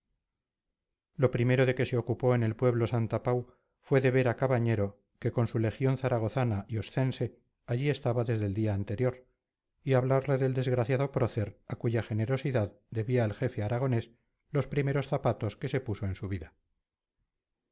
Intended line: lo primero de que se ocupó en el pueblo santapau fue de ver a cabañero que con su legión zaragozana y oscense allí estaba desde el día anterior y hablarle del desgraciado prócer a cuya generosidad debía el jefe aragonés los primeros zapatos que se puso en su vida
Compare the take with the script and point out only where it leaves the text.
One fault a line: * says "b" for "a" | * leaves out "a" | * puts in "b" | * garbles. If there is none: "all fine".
all fine